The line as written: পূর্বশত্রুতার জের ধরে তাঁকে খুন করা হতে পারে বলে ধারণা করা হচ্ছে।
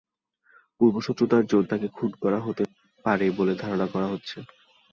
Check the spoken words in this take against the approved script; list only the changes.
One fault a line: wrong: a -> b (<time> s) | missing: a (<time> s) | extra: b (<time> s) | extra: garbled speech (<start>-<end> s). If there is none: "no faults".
missing: ধরে (1.6 s)